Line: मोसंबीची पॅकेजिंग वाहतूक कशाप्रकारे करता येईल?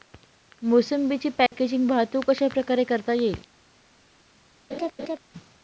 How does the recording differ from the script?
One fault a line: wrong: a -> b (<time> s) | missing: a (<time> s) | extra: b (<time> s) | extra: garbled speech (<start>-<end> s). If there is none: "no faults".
no faults